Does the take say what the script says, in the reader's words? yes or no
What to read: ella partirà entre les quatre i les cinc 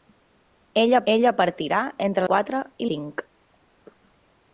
no